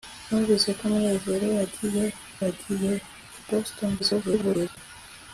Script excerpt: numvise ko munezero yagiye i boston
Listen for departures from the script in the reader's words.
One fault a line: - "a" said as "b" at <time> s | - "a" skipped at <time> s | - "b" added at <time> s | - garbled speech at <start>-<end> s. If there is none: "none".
- "yagiye" added at 2.4 s
- garbled speech at 4.0-4.8 s